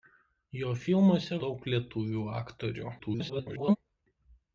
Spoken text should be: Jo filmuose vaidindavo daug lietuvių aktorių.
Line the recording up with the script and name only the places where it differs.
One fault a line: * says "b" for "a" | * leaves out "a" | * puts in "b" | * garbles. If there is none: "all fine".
* leaves out "vaidindavo"
* garbles